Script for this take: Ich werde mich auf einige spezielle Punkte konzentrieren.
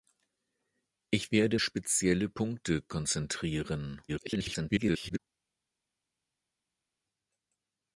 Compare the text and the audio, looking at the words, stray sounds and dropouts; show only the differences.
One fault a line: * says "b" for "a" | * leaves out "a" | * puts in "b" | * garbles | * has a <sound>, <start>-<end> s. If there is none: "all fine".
* leaves out "mich auf einige"
* garbles